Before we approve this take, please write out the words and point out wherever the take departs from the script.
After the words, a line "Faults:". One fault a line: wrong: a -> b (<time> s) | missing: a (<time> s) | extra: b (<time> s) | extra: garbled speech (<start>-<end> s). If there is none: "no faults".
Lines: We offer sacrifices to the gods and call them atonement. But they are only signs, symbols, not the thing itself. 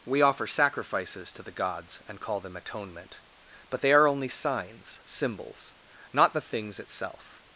We offer sacrifices to the gods and call them atonement. But they are only signs, symbols, not the things itself.
Faults:
wrong: thing -> things (6.4 s)